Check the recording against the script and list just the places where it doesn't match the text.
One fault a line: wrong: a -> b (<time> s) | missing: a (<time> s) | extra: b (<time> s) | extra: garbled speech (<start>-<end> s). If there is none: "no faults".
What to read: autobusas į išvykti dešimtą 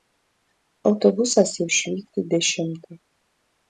no faults